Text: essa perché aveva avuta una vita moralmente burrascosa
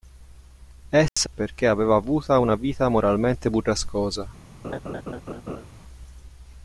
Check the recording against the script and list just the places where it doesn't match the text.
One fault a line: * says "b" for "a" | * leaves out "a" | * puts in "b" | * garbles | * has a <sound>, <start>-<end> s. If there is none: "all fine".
* has a dropout, 1.1-1.2 s
* has a laugh, 4.6-5.6 s